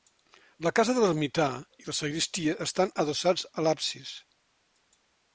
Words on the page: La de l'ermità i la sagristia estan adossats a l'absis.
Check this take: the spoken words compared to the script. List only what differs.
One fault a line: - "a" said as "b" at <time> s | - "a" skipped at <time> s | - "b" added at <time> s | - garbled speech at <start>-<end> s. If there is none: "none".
- "casa" added at 0.8 s